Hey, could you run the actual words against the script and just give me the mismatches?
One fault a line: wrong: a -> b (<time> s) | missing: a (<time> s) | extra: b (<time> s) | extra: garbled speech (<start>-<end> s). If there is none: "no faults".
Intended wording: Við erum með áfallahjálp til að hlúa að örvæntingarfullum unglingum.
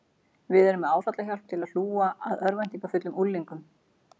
no faults